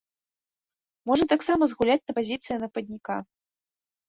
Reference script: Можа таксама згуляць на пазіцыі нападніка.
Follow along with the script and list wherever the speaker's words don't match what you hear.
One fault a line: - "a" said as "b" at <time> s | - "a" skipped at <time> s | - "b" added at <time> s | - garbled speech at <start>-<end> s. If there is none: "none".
none